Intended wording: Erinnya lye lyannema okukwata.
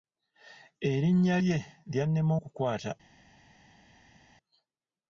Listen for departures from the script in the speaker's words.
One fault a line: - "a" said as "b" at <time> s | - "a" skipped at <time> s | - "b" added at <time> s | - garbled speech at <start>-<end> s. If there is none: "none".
none